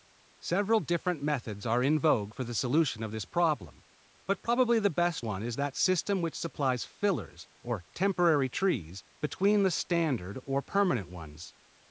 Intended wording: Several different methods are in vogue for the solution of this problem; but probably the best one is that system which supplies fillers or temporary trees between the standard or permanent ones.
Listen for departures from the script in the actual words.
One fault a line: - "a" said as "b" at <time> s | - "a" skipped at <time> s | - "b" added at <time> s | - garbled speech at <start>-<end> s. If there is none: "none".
none